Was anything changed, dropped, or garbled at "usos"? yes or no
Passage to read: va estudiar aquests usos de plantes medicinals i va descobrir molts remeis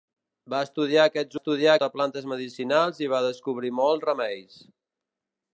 yes